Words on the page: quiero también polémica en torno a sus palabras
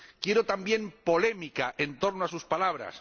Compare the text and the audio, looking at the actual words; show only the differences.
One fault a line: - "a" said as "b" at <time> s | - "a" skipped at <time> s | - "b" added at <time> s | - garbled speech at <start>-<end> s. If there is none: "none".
none